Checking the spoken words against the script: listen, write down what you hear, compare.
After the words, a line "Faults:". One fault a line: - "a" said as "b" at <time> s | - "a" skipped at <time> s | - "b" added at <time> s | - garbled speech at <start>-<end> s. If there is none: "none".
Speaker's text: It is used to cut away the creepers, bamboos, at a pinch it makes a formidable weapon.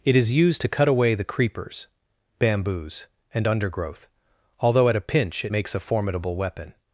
It is used to cut away the creepers, bamboos, and undergrowth, although at a pinch it makes a formidable weapon.
Faults:
- "and undergrowth although" added at 3.3 s